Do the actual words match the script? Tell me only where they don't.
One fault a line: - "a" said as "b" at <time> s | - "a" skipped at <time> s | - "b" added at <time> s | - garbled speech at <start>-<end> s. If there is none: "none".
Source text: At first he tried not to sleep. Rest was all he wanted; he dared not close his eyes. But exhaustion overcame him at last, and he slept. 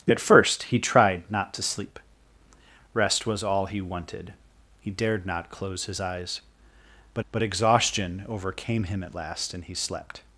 - "but" added at 7.3 s